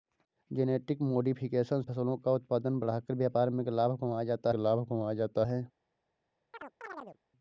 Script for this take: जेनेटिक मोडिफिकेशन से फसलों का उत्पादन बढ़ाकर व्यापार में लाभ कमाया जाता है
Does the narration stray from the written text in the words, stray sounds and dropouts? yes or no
yes